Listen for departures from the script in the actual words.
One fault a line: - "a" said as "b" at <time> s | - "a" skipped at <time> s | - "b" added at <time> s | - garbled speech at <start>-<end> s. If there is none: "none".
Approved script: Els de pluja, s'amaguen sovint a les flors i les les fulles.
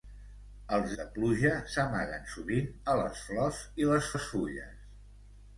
none